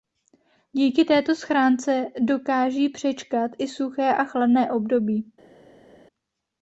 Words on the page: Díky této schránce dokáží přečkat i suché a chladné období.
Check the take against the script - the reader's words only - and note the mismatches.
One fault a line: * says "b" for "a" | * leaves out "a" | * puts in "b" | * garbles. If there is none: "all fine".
all fine